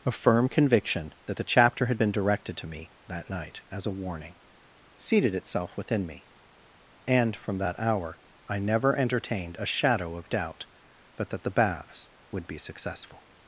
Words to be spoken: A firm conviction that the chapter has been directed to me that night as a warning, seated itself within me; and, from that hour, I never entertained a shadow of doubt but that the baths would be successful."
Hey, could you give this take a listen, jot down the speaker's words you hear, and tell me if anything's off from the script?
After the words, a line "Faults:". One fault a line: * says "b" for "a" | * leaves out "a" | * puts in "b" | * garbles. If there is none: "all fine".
A firm conviction that the chapter had been directed to me that night as a warning, seated itself within me; and, from that hour, I never entertained a shadow of doubt but that the baths would be successful."
Faults:
* says "had" for "has"